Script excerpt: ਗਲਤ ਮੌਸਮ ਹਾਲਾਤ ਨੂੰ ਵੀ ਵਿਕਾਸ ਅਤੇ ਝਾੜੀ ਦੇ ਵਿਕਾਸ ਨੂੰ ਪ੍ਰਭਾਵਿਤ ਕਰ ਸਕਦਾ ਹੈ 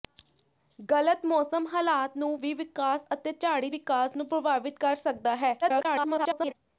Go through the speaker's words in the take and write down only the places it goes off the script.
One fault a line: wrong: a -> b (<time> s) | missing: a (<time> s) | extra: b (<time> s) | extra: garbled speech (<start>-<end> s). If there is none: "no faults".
missing: ਦੇ (3.7 s)
extra: garbled speech (5.6-6.5 s)